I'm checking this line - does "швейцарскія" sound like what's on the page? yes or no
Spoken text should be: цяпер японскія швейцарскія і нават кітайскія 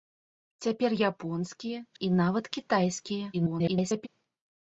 no